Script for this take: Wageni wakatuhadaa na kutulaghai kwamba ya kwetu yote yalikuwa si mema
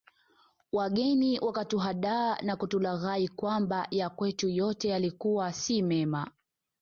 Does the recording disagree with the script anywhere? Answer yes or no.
no